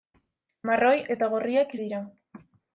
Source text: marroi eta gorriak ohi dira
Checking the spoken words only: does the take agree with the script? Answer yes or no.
yes